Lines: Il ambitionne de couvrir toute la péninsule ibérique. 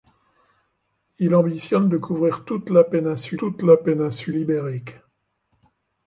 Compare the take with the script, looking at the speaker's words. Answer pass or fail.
fail